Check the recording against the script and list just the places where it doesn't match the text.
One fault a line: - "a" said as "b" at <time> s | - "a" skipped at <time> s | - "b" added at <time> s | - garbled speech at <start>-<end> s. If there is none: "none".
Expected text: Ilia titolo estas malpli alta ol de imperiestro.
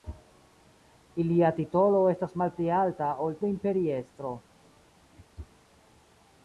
none